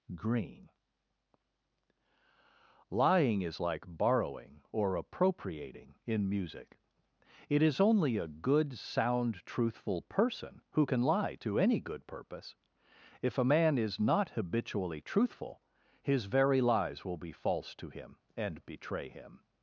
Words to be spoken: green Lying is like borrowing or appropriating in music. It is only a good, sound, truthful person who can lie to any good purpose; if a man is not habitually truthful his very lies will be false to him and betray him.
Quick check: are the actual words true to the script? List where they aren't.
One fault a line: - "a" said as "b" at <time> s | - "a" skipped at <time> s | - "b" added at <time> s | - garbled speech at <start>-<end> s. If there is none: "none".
none